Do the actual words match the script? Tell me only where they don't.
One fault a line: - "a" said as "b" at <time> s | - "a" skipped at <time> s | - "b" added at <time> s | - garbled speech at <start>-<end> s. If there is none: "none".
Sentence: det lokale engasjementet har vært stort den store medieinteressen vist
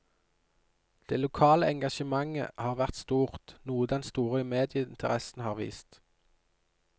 - "noe" added at 3.7 s
- "har" added at 5.5 s